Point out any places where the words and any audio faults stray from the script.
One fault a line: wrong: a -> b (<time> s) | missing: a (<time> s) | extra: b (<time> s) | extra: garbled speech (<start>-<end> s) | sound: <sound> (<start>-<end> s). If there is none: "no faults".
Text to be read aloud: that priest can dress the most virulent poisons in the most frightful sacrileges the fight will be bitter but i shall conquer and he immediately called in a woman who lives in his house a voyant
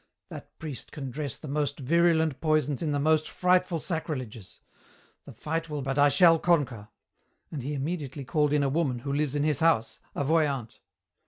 missing: be bitter (5.8 s)